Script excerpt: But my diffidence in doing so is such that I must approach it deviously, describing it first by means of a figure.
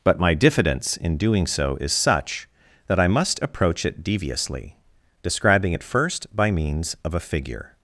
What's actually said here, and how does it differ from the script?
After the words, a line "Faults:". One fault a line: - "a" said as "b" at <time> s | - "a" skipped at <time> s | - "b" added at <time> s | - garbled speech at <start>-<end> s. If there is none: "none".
But my diffidence in doing so is such that I must approach it deviously, describing it first by means of a figure.
Faults:
none